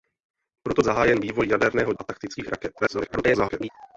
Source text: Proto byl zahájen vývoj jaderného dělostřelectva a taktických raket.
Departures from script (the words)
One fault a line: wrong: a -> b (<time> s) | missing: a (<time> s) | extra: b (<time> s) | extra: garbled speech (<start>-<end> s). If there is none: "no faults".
missing: byl (0.8 s)
missing: dělostřelectva (1.9 s)
extra: garbled speech (2.8-3.7 s)